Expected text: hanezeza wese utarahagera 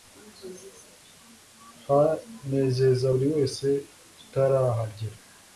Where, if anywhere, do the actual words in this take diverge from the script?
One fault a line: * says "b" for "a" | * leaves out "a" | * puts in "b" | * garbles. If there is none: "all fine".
* puts in "buri"